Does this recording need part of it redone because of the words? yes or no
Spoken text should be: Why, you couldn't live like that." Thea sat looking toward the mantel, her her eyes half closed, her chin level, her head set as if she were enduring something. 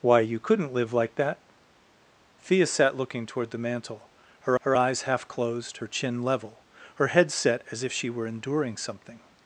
no